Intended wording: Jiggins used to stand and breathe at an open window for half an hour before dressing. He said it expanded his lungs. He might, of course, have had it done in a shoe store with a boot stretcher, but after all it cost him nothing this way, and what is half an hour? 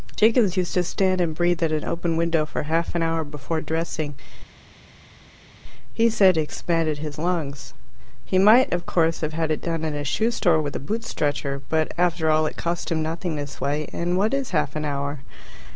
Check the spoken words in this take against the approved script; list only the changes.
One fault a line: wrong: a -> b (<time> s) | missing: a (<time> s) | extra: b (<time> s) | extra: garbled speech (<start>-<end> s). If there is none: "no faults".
missing: it (6.4 s)